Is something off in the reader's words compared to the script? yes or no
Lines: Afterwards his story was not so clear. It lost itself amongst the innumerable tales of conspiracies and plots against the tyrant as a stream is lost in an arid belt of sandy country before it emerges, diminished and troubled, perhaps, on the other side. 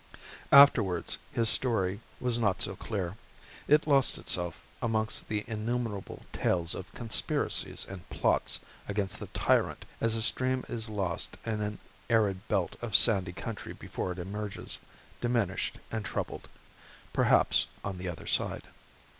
no